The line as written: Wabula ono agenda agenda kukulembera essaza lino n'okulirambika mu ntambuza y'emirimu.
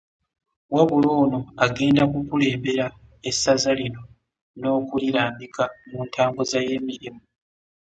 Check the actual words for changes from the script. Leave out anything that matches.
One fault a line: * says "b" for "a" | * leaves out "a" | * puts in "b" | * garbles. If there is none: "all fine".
* leaves out "agenda"